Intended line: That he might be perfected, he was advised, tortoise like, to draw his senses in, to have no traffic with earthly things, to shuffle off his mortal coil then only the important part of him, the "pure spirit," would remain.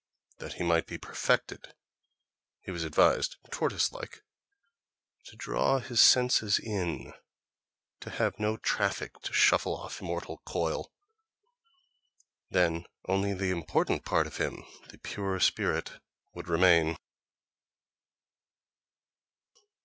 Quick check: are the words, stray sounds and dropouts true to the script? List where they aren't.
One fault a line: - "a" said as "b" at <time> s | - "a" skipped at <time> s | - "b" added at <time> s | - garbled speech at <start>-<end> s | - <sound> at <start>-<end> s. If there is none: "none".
- "with earthly things" skipped at 9.2 s
- "his" skipped at 10.0 s